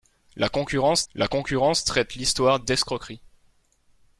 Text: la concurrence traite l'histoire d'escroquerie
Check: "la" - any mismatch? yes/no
no